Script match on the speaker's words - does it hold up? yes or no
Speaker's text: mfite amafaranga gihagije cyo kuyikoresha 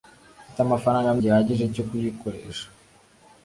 yes